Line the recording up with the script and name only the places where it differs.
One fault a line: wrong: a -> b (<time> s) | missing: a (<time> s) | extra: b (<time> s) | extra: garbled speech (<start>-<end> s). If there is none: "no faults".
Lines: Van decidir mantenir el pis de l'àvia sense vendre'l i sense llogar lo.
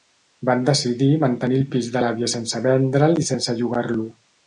no faults